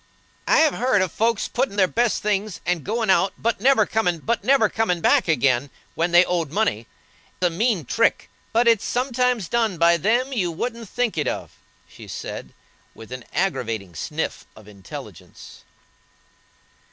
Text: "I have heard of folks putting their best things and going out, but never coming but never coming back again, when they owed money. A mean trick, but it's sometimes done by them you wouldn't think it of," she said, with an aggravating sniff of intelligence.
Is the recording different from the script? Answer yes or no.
no